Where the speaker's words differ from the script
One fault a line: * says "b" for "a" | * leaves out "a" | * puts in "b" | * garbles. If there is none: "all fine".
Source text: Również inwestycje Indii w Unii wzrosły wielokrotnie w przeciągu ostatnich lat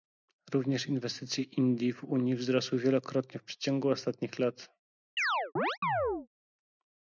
all fine